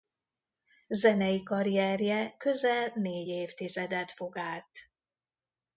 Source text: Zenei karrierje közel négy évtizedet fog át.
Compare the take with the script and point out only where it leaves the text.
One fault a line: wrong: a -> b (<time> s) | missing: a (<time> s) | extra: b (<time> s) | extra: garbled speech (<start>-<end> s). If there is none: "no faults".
no faults